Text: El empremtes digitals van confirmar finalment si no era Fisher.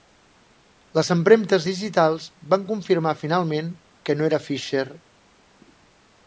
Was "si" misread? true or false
true